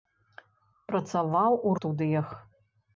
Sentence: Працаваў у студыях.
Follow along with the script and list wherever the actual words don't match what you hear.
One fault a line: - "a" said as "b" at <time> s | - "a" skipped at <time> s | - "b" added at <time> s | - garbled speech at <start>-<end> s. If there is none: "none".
none